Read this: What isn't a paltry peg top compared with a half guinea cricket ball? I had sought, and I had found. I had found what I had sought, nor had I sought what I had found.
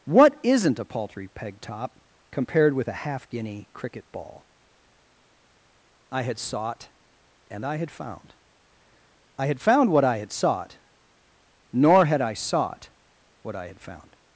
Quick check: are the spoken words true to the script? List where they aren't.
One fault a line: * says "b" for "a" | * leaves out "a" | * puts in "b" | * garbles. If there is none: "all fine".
all fine